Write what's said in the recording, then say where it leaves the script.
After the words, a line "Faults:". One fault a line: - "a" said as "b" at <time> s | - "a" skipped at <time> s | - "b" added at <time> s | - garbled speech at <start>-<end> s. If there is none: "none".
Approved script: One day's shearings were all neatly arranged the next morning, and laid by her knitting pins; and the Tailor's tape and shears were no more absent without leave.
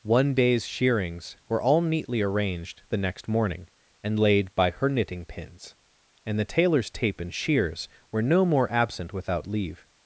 One day's shearings were all neatly arranged the next morning, and laid by her knitting pins; and the Tailor's tape and shears were no more absent without leave.
Faults:
none